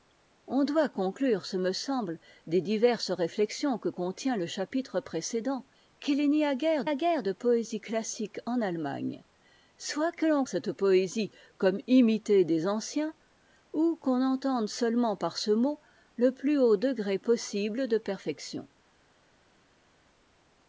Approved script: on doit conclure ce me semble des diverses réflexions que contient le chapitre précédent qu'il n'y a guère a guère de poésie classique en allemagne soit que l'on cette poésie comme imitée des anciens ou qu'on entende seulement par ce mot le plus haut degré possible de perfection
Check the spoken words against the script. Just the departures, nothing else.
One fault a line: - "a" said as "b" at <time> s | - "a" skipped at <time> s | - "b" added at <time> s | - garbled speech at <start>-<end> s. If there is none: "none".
none